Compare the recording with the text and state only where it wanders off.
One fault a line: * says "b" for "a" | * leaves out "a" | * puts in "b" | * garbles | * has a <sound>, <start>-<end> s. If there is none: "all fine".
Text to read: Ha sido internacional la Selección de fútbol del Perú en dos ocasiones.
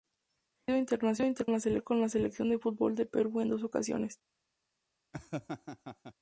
* has a laugh, 5.1-6.1 s